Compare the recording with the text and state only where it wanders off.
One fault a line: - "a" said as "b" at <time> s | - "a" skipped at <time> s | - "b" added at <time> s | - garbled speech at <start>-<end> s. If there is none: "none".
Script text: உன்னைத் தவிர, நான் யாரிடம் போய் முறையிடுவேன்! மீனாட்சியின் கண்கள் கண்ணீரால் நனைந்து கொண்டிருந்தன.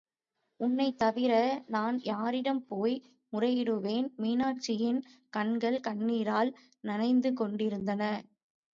none